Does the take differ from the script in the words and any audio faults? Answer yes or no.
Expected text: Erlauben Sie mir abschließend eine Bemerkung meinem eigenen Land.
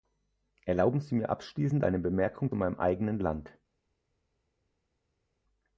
no